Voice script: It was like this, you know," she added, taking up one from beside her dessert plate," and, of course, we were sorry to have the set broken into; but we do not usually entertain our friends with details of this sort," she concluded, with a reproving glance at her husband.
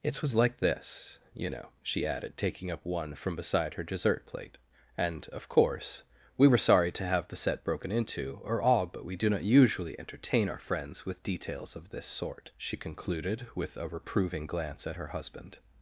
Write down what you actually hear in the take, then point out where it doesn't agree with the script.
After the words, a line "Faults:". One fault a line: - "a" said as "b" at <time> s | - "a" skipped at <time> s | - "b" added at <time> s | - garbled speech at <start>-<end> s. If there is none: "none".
It was like this, you know," she added, taking up one from beside her dessert plate," and, of course, we were sorry to have the set broken into; or all but we do not usually entertain our friends with details of this sort," she concluded, with a reproving glance at her husband.
Faults:
- "or all" added at 8.4 s